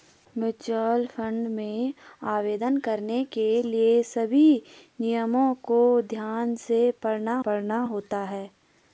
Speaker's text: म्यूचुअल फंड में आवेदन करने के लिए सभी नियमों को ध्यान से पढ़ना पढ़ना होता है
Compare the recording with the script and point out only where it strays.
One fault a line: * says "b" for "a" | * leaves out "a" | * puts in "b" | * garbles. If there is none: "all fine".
all fine